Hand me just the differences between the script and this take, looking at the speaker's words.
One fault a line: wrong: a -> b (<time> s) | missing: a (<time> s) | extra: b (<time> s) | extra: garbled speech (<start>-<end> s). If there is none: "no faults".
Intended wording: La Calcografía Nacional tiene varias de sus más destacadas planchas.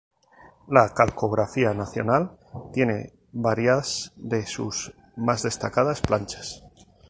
no faults